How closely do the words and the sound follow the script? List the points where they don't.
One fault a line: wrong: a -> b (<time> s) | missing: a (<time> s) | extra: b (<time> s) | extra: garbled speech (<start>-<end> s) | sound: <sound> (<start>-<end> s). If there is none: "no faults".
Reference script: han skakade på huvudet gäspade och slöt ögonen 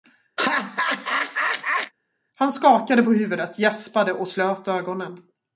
sound: laugh (0.4-1.9 s)